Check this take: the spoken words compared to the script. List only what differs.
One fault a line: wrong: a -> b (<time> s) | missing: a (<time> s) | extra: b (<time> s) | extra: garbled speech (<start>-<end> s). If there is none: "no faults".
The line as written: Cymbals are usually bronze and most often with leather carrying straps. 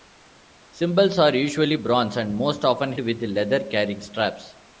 no faults